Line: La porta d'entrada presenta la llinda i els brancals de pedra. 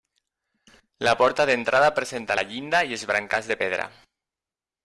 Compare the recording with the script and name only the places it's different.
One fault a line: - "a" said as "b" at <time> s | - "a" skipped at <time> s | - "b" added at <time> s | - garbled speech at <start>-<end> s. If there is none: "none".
none